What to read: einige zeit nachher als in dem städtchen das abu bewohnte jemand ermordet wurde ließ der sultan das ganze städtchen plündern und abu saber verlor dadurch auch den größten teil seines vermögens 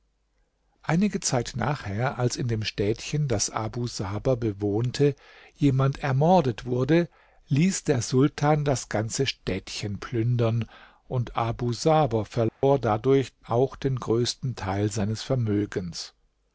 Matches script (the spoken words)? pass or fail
fail